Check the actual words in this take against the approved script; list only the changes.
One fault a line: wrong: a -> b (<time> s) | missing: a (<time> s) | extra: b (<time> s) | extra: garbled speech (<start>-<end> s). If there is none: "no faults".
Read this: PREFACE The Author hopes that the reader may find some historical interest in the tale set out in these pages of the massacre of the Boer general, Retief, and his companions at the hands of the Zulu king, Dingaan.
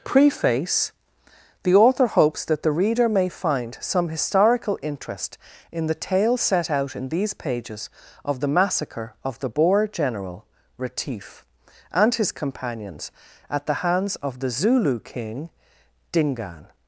no faults